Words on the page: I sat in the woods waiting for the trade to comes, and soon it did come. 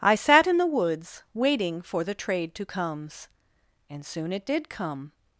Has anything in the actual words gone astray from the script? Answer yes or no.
no